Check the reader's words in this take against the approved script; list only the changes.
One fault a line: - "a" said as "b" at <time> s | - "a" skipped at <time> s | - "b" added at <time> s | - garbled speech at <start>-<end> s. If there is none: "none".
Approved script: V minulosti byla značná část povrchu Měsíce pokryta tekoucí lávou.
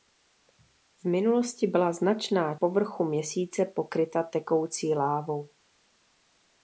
- "část" skipped at 2.5 s